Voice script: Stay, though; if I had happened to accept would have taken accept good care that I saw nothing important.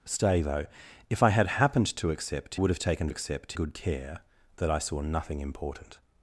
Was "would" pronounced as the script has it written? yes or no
yes